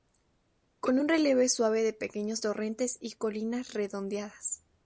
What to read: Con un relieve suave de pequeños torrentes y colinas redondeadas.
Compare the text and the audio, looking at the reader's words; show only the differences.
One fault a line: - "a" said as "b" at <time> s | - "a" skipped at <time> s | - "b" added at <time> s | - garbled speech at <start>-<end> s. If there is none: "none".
none